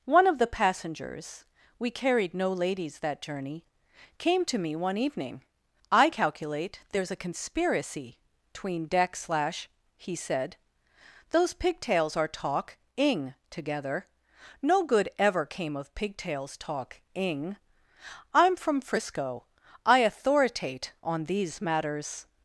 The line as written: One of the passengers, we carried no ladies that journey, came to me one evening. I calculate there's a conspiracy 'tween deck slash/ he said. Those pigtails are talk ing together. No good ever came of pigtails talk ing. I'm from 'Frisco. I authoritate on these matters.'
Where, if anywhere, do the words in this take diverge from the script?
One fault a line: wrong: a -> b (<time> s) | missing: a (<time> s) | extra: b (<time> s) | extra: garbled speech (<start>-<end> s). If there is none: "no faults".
no faults